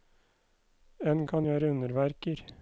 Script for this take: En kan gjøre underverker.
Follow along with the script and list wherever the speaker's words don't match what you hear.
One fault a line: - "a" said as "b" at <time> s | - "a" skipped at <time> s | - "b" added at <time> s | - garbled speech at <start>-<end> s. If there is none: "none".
none